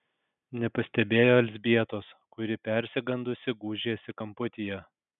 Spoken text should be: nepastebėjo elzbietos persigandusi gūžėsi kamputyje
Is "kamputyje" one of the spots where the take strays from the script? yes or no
no